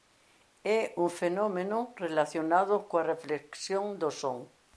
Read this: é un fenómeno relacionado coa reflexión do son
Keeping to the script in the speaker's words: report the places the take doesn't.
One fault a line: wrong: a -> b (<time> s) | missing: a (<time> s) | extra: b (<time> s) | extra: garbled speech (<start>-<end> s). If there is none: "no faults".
no faults